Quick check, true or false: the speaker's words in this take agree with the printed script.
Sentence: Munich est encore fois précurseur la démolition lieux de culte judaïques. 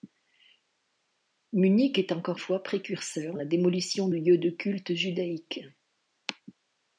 true